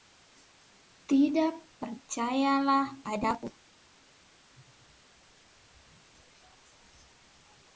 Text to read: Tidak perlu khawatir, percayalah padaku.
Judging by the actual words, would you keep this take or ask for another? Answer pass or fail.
fail